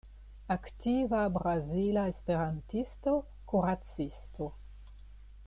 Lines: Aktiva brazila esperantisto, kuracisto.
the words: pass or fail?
pass